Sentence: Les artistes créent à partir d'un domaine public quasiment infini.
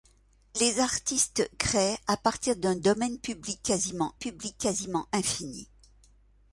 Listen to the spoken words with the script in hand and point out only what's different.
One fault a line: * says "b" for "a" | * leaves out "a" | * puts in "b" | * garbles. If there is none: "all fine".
* puts in "public quasiment"